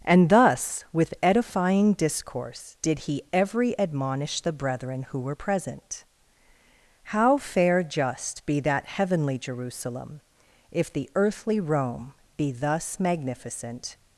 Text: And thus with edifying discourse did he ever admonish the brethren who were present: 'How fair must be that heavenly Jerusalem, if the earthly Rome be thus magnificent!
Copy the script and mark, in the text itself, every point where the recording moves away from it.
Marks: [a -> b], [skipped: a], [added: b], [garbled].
And thus with edifying discourse did he [ever -> every] admonish the brethren who were present: 'How fair [must -> just] be that heavenly Jerusalem, if the earthly Rome be thus magnificent!